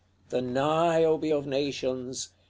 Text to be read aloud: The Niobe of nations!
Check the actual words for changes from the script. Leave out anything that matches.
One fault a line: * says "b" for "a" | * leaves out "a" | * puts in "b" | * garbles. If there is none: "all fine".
all fine